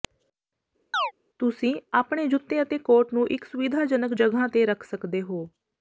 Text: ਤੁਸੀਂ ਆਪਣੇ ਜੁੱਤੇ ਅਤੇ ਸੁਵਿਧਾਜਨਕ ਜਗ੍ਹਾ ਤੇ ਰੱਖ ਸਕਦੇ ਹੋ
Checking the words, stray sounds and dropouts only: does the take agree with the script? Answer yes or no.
no